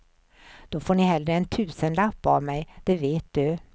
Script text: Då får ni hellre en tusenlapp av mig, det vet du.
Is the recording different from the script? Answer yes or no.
no